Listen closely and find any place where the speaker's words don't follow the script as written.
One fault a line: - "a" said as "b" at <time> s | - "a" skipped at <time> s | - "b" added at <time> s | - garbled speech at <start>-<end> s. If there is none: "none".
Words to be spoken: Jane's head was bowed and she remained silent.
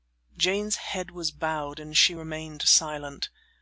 none